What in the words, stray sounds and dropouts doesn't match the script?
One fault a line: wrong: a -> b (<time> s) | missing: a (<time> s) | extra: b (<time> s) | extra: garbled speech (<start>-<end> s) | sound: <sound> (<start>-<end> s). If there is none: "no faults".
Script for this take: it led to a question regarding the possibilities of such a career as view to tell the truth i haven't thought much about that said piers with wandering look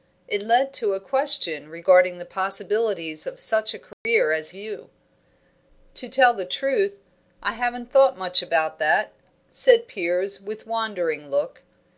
sound: dropout (3.9-4.1 s)